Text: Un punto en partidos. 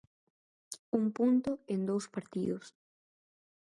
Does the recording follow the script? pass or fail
fail